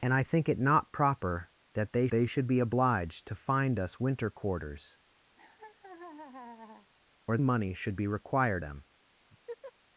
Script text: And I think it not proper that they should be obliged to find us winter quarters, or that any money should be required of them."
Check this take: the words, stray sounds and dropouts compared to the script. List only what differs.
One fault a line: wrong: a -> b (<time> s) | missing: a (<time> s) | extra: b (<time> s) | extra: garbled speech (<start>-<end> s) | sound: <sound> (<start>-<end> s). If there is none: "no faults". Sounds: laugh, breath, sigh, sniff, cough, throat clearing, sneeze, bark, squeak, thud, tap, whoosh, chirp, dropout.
extra: they (2.1 s)
sound: laugh (5.4-6.9 s)
missing: that any (7.4 s)
missing: of (8.6 s)
sound: laugh (9.3-9.7 s)